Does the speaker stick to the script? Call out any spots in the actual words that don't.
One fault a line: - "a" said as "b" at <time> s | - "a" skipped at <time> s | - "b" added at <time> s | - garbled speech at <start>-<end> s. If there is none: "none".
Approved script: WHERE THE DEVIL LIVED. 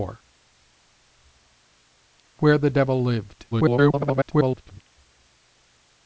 - garbled speech at 3.5-4.8 s